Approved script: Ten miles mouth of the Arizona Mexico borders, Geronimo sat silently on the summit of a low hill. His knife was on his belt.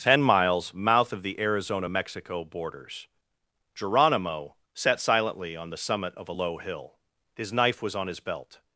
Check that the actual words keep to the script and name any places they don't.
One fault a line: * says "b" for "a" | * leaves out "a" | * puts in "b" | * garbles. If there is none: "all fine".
all fine